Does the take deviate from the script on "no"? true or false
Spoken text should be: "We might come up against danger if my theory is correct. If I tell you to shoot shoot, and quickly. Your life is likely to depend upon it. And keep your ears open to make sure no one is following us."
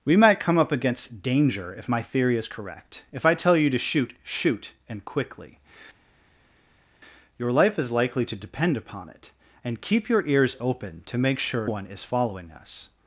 true